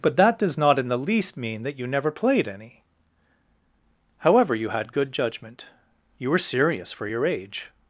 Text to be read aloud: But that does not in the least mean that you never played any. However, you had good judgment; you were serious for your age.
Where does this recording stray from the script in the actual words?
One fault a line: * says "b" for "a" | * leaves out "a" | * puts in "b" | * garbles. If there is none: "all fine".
all fine